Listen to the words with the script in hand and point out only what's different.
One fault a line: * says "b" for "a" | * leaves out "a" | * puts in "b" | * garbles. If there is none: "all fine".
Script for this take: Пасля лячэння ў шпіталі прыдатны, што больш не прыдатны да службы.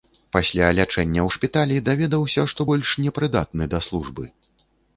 * says "даведаўся" for "прыдатны"